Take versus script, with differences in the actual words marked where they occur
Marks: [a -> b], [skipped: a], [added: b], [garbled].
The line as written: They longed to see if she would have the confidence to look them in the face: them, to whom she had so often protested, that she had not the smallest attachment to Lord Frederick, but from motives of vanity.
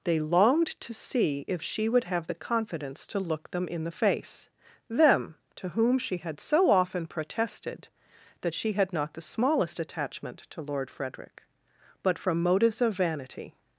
They longed to see if she would have the confidence to look them in the face: them, to whom she had so often protested, that she had not the smallest attachment to Lord Frederick, but from motives of vanity.